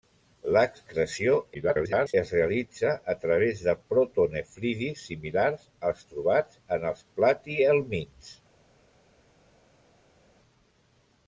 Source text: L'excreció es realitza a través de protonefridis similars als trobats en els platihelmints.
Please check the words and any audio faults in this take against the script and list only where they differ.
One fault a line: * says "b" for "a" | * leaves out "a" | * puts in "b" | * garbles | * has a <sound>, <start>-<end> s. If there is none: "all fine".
* garbles